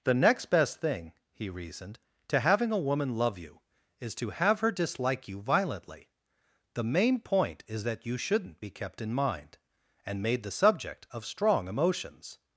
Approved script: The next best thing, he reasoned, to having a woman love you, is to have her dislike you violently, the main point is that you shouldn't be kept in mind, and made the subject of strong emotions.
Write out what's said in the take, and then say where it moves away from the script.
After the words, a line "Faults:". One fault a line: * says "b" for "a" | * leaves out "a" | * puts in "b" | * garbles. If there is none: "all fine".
The next best thing, he reasoned, to having a woman love you, is to have her dislike you violently, the main point is that you shouldn't be kept in mind, and made the subject of strong emotions.
Faults:
all fine